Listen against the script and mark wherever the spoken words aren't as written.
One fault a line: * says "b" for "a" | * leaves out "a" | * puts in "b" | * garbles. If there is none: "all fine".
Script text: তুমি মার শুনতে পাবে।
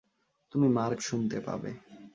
all fine